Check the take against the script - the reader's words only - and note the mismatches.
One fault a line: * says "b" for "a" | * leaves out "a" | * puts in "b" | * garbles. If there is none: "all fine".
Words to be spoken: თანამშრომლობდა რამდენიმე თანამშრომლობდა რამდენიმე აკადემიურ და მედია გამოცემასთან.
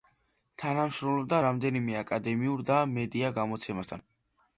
* leaves out "თანამშრომლობდა რამდენიმე"